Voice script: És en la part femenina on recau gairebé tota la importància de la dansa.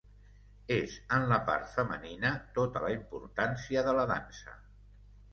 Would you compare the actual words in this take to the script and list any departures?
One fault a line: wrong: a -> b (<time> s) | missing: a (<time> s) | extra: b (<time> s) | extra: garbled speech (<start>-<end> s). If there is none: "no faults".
missing: on recau gairebé (2.3 s)